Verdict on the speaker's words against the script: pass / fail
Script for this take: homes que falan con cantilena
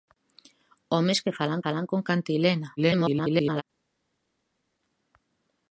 fail